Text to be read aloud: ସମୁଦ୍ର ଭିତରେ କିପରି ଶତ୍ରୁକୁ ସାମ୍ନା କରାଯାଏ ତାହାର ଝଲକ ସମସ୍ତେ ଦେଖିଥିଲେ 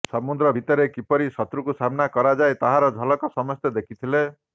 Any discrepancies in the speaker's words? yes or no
no